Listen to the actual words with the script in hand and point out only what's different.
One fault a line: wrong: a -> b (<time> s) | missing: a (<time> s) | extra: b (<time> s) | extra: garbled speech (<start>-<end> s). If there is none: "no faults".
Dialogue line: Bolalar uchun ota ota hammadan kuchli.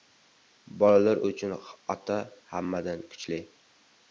missing: ota (2.2 s)